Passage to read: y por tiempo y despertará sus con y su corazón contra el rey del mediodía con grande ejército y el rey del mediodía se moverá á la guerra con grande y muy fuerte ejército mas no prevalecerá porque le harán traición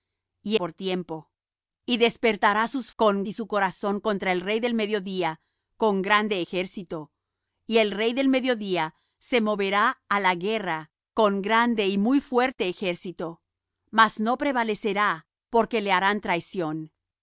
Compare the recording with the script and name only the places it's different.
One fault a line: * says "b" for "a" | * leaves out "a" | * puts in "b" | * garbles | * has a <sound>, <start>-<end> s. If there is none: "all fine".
all fine